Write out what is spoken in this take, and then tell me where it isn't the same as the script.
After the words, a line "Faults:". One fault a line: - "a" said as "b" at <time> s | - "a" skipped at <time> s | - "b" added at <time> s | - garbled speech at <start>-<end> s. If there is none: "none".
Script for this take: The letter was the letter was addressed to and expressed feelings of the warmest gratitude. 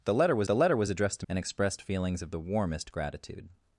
The letter was the letter was addressed to and expressed feelings of the warmest gratitude.
Faults:
none